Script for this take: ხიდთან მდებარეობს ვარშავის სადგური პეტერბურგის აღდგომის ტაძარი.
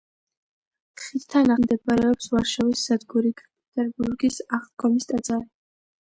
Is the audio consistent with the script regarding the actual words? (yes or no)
yes